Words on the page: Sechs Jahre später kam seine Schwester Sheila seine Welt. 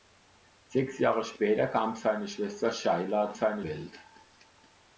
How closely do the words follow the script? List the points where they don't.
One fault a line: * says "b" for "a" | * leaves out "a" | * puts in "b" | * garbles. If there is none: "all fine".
all fine